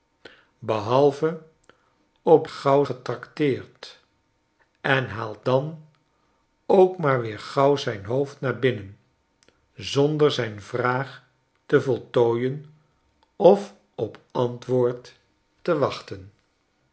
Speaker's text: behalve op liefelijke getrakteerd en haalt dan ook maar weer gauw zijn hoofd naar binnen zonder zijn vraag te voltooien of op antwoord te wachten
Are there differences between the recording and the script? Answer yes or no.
yes